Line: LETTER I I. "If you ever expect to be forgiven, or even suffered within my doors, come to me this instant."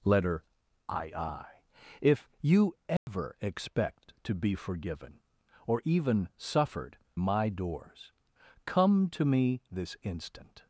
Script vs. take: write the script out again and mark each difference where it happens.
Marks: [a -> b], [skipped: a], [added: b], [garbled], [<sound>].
LETTER I I. "If you ever [dropout] expect to be forgiven, or even suffered [skipped: within] my doors, come to me this instant."